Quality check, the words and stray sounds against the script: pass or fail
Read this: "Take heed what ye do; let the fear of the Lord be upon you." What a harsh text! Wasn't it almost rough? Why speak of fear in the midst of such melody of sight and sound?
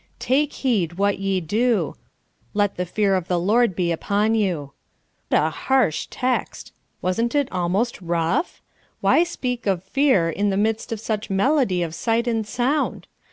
fail